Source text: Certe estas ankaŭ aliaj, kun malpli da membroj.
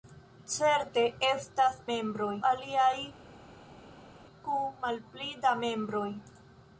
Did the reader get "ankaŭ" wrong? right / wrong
wrong